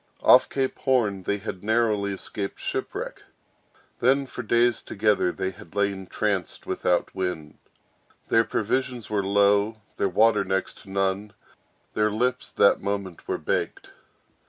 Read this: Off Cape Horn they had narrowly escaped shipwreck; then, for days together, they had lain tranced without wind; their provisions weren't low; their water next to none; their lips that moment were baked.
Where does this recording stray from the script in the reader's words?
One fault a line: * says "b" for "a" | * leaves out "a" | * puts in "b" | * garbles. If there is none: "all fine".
* says "were" for "weren't"